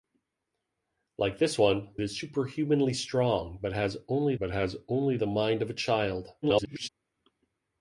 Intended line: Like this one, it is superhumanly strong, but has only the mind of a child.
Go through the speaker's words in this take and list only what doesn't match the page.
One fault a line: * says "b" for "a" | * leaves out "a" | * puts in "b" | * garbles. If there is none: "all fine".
* leaves out "it"
* puts in "but has only"
* garbles